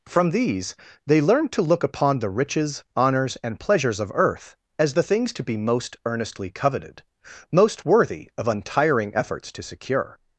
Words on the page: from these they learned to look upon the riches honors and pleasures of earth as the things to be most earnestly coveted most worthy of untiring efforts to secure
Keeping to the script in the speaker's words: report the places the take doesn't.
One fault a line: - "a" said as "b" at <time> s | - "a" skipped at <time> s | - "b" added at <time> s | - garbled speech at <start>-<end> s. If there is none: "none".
none